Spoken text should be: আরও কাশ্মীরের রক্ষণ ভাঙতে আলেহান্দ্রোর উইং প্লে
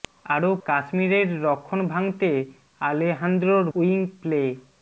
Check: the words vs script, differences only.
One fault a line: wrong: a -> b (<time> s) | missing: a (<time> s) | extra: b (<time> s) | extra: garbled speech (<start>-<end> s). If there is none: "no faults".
no faults